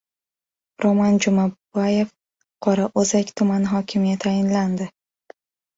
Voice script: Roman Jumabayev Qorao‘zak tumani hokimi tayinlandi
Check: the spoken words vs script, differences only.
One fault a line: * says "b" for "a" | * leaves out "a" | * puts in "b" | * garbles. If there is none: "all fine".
all fine